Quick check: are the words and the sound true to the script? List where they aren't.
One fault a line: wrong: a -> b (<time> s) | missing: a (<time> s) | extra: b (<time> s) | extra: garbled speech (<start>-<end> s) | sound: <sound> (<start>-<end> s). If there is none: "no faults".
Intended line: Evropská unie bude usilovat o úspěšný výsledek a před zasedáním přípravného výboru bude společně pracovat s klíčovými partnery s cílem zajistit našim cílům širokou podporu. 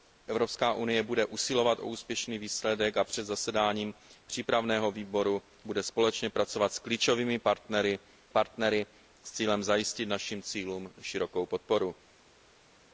extra: partnery (8.3 s)